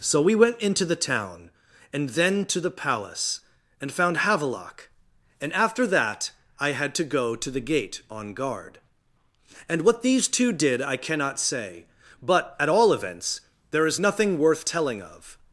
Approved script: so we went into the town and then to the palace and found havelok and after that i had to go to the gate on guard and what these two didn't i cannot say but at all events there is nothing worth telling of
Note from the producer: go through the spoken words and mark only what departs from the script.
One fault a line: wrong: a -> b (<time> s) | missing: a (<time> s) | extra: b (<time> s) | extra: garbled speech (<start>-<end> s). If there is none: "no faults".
wrong: didn't -> did (10.5 s)